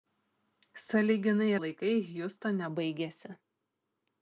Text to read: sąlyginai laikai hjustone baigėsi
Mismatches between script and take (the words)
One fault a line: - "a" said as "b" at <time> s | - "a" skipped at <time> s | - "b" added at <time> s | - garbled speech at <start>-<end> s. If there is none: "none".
none